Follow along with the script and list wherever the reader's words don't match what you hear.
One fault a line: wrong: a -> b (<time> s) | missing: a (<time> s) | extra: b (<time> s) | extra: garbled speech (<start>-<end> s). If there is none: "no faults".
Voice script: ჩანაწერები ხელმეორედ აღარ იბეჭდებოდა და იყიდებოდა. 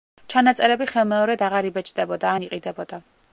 wrong: და -> ან (2.3 s)